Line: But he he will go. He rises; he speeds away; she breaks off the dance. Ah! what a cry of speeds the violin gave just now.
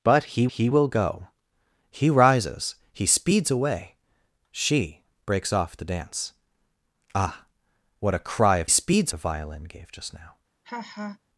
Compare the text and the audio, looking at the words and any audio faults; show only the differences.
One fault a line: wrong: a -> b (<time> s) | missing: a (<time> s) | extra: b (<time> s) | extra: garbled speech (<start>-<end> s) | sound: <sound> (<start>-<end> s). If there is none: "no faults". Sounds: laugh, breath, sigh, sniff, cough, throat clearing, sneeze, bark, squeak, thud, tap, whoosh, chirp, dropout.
sound: laugh (10.6-11.2 s)